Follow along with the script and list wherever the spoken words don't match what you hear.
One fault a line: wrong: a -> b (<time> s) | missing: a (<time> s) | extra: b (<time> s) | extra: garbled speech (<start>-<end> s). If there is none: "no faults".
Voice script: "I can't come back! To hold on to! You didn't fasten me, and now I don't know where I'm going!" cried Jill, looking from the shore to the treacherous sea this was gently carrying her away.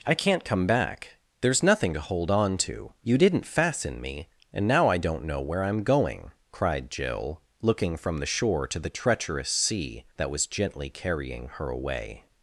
extra: There's nothing (1.4 s)
wrong: this -> that (10.2 s)